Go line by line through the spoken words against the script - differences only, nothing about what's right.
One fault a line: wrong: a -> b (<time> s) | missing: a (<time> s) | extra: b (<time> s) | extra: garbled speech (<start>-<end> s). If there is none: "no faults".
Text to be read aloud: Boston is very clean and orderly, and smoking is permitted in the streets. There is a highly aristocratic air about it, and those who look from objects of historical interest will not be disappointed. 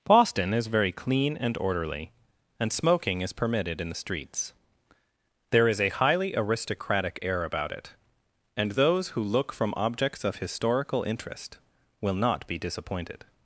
no faults